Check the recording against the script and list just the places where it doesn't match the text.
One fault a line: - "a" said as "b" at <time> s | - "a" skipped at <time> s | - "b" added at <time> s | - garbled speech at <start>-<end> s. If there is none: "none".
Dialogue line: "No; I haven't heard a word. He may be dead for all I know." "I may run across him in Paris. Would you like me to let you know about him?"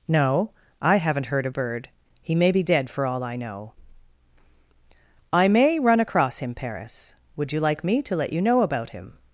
- "word" said as "bird" at 1.5 s
- "in" skipped at 6.5 s